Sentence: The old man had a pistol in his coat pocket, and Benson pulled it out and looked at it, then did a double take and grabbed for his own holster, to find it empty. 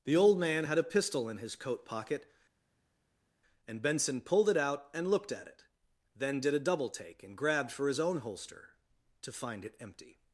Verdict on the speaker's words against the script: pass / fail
pass